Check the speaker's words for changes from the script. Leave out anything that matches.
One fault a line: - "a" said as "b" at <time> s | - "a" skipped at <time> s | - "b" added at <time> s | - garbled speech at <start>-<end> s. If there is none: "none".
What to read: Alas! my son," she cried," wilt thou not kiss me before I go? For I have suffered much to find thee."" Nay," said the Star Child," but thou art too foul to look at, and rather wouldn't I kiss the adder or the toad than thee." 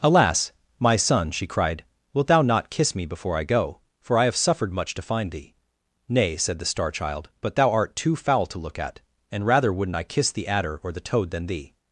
none